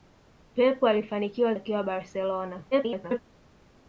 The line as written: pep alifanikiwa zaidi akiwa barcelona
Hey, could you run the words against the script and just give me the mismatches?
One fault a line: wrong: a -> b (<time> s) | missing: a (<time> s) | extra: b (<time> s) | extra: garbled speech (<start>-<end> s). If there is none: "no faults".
missing: zaidi (1.6 s)
extra: garbled speech (2.7-3.2 s)